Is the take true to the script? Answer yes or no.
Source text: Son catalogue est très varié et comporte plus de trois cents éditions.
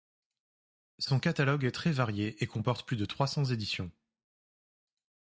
yes